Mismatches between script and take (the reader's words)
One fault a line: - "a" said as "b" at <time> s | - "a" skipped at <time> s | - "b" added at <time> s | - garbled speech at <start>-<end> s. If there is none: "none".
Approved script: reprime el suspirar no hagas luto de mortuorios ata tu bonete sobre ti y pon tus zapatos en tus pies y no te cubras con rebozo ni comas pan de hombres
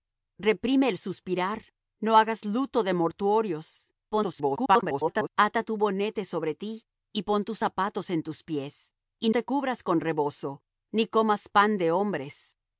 - garbled speech at 4.1-5.3 s
- "no" skipped at 9.3 s